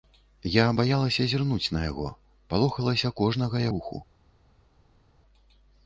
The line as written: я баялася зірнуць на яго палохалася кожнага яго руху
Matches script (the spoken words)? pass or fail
fail